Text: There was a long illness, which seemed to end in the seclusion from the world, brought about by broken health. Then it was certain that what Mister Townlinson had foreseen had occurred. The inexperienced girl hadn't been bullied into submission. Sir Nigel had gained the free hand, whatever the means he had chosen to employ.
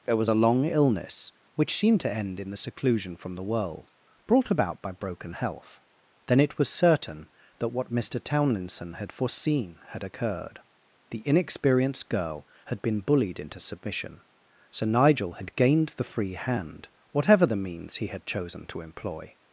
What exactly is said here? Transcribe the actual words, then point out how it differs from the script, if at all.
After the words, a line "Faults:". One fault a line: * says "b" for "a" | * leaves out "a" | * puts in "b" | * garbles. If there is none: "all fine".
There was a long illness, which seemed to end in the seclusion from the world, brought about by broken health. Then it was certain that what Mister Townlinson had foreseen had occurred. The inexperienced girl had been bullied into submission. Sir Nigel had gained the free hand, whatever the means he had chosen to employ.
Faults:
* says "had" for "hadn't"